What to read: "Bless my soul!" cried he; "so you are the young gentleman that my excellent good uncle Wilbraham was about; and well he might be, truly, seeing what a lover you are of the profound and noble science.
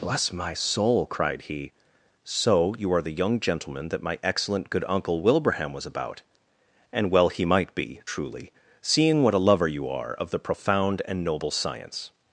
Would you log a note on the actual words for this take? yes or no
no